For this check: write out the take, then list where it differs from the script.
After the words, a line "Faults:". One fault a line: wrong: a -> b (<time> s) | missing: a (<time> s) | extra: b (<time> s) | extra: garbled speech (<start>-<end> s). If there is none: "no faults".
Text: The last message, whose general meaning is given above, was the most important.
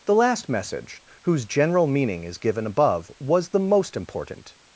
The last message, whose general meaning is given above, was the most important.
Faults:
no faults